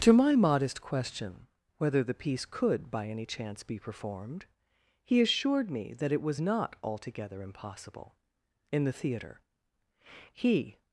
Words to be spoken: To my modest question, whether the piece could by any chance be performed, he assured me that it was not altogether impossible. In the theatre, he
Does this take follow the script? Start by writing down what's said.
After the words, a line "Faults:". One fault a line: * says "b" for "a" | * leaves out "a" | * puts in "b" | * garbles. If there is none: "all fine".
To my modest question, whether the piece could by any chance be performed, he assured me that it was not altogether impossible. In the theatre, he
Faults:
all fine